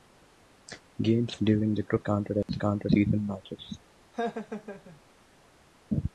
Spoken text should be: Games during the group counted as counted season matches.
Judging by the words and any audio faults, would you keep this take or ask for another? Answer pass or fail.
fail